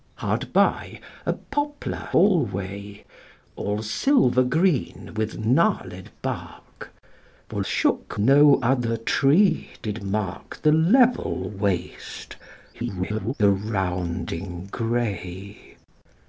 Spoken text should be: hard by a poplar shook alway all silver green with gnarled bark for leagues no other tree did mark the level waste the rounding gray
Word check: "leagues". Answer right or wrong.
wrong